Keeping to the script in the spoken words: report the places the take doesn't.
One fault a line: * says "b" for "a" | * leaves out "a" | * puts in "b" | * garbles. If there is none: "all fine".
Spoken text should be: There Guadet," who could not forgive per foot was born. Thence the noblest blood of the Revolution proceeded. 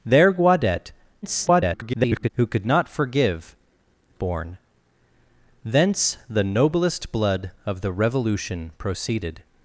* garbles
* leaves out "per foot was"